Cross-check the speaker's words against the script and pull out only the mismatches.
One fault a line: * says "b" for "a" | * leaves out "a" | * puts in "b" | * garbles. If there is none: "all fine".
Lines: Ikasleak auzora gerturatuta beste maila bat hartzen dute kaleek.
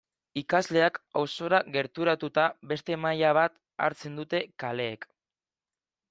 all fine